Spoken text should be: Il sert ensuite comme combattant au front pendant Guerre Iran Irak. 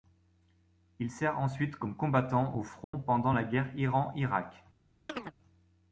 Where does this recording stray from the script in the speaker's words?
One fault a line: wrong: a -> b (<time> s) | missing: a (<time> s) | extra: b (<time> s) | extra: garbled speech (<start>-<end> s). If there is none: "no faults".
extra: la (3.3 s)